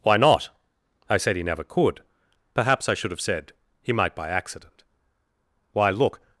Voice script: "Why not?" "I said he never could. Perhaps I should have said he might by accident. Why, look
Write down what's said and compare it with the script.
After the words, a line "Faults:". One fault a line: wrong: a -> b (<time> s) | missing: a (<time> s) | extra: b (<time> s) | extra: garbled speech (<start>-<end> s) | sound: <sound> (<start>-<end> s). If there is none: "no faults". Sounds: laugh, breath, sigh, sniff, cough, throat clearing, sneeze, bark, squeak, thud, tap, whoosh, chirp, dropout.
"Why not?" "I said he never could. Perhaps I should have said he might by accident. Why, look
Faults:
no faults